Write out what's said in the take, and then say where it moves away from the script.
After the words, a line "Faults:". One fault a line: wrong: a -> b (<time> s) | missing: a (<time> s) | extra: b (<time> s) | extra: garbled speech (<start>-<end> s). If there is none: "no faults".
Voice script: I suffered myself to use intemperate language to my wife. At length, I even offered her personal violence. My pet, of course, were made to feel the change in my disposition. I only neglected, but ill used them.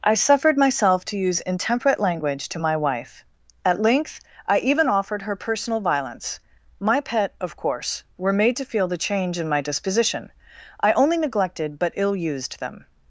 I suffered myself to use intemperate language to my wife. At length, I even offered her personal violence. My pet, of course, were made to feel the change in my disposition. I only neglected, but ill used them.
Faults:
no faults